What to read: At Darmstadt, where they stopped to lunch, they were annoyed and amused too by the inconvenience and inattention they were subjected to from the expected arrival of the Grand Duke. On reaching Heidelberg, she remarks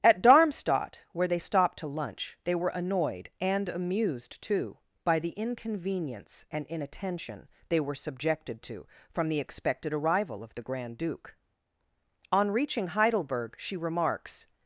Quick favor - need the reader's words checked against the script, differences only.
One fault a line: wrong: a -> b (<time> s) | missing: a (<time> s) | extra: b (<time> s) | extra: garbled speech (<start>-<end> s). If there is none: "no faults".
no faults